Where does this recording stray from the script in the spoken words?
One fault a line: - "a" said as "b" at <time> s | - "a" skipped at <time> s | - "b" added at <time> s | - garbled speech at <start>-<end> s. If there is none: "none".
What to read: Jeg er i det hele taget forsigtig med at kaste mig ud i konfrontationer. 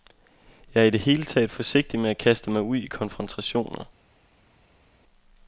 none